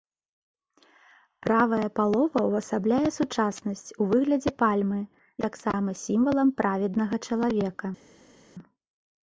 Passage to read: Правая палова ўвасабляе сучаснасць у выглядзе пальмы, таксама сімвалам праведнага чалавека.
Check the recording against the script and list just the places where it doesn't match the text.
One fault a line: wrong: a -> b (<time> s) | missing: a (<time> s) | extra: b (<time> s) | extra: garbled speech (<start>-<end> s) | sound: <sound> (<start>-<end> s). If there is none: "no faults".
no faults